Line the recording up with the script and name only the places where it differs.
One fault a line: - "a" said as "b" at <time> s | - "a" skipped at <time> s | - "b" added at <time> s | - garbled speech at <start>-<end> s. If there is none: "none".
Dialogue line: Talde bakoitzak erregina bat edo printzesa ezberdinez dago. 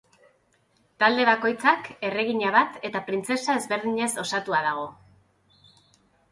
- "edo" said as "eta" at 2.9 s
- "osatua" added at 4.3 s